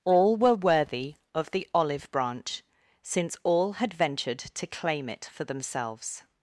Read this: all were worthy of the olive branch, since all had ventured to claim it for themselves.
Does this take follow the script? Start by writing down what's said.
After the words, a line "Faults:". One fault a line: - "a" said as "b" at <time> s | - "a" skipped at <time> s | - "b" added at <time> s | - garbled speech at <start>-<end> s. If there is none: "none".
all were worthy of the olive branch, since all had ventured to claim it for themselves.
Faults:
none